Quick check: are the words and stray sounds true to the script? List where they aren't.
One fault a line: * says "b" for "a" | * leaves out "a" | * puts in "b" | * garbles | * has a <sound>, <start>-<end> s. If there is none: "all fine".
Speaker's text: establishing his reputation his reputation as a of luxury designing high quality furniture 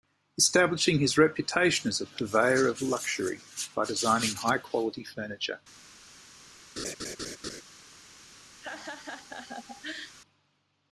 * leaves out "his reputation"
* puts in "purveyor"
* puts in "by"
* has a laugh, 6.8-7.6 s
* has a laugh, 8.6-10.2 s